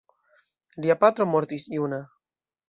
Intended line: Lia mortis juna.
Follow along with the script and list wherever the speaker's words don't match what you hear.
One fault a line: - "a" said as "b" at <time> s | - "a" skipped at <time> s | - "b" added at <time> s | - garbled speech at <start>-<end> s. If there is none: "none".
- "patro" added at 1.0 s